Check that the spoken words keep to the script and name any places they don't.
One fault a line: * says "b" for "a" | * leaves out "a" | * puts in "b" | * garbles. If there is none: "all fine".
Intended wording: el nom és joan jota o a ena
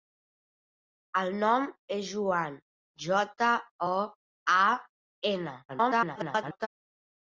* garbles